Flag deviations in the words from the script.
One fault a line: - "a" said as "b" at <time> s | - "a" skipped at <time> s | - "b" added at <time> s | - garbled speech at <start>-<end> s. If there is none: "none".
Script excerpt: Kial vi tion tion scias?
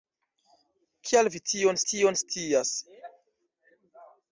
none